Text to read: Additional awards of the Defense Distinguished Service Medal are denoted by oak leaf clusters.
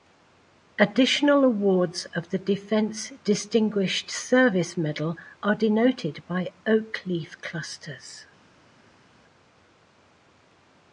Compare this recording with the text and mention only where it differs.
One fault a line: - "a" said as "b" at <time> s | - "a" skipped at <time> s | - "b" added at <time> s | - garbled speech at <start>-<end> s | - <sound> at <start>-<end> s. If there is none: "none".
none